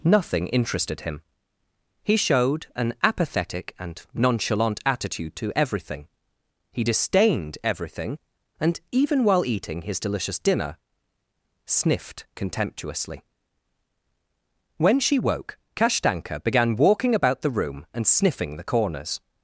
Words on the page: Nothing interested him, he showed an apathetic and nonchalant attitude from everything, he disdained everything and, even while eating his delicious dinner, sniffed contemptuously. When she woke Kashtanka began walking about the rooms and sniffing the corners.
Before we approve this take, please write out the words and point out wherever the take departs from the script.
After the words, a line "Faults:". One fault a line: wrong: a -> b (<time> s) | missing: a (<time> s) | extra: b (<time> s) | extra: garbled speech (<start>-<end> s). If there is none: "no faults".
Nothing interested him, he showed an apathetic and nonchalant attitude to everything, he disdained everything and, even while eating his delicious dinner, sniffed contemptuously. When she woke Kashtanka began walking about the room and sniffing the corners.
Faults:
wrong: from -> to (5.3 s)
wrong: rooms -> room (17.5 s)